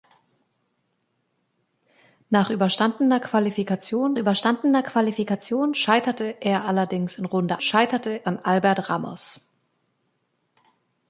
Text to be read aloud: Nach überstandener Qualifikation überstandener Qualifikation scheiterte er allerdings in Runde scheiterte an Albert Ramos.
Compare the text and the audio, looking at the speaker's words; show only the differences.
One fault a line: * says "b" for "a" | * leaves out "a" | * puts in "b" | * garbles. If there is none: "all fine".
all fine